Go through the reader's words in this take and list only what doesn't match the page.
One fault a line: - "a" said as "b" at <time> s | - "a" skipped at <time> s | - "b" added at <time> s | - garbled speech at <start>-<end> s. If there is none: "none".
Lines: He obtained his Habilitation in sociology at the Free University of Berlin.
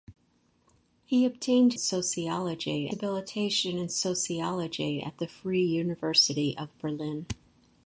- "his" said as "sociology" at 1.7 s